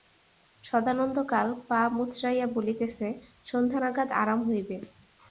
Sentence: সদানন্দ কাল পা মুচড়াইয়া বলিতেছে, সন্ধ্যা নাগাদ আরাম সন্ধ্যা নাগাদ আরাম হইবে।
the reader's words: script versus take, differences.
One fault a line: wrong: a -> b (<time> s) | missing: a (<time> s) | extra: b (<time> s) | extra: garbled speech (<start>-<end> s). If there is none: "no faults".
missing: সন্ধ্যা নাগাদ আরাম (4.4 s)